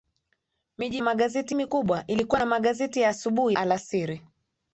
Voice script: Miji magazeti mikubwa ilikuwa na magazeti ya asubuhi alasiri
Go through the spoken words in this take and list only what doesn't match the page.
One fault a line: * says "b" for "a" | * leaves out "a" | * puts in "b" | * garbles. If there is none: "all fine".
all fine